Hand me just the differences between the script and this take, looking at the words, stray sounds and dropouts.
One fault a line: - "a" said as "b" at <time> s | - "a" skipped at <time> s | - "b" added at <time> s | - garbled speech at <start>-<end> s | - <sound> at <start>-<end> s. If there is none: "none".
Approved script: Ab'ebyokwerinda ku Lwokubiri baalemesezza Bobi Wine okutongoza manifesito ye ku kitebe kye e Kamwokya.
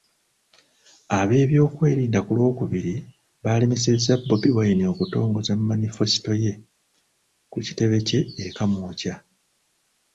none